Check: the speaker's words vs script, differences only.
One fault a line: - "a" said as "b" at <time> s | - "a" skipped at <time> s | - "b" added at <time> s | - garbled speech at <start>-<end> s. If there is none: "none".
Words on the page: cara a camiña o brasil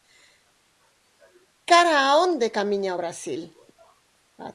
- "onde" added at 2.2 s